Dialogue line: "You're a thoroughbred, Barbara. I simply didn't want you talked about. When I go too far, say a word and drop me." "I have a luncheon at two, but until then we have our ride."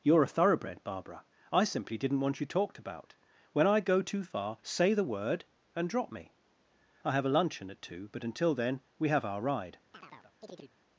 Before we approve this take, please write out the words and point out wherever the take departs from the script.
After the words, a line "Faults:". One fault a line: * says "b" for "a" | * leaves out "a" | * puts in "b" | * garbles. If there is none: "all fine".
"You're a thoroughbred, Barbara. I simply didn't want you talked about. When I go too far, say the word and drop me." "I have a luncheon at two, but until then we have our ride."
Faults:
* says "the" for "a"